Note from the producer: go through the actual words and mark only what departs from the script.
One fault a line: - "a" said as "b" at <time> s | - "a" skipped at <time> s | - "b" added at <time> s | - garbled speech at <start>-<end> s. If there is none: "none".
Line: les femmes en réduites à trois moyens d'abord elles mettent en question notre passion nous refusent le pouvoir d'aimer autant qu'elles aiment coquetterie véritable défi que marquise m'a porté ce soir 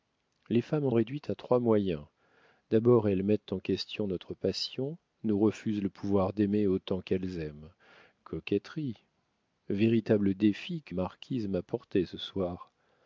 none